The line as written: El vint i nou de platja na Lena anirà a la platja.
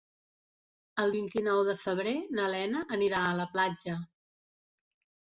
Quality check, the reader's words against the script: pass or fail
fail